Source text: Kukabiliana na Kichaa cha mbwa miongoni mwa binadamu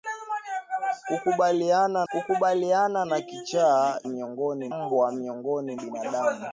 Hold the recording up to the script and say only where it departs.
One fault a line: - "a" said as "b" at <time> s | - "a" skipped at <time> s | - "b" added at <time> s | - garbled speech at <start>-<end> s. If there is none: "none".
- "kukabiliana" added at 2.1 s
- "cha" said as "miongoni" at 4.0 s
- "mwa" skipped at 5.8 s